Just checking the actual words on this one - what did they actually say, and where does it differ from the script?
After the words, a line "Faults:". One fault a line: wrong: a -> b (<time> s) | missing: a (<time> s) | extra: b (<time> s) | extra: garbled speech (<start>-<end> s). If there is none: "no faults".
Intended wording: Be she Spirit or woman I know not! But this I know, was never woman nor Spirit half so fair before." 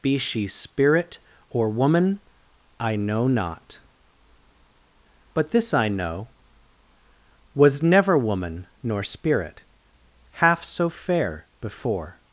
Be she Spirit or woman I know not! But this I know, was never woman nor Spirit half so fair before."
Faults:
no faults